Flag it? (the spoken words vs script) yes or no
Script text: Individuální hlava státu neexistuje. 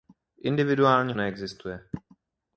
yes